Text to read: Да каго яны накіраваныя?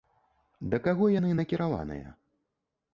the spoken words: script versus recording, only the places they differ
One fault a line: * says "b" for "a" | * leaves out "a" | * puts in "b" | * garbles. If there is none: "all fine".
all fine